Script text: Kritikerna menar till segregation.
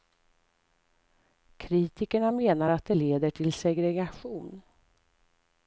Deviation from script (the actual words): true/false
true